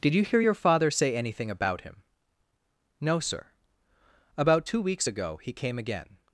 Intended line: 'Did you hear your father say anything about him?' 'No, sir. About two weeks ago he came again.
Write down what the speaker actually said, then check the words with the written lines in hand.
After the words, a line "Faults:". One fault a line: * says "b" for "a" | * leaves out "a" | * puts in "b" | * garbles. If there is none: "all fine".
'Did you hear your father say anything about him?' 'No, sir. About two weeks ago he came again.
Faults:
all fine